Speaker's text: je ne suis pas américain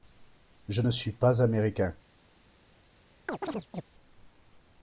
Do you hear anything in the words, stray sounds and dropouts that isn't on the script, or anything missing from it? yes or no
yes